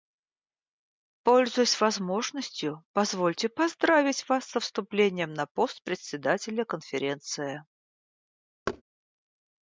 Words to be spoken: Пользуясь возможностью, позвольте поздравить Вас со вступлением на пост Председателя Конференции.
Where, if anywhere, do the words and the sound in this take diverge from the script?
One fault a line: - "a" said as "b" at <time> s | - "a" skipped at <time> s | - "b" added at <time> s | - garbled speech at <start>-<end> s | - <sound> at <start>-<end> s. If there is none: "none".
- thud at 8.7-8.8 s